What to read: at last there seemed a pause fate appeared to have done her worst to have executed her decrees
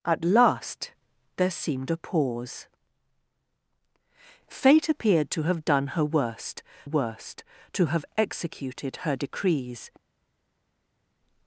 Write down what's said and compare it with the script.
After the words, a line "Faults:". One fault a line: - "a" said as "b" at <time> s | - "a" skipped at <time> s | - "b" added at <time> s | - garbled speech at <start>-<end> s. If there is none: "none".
at last there seemed a pause fate appeared to have done her worst worst to have executed her decrees
Faults:
- "worst" added at 6.8 s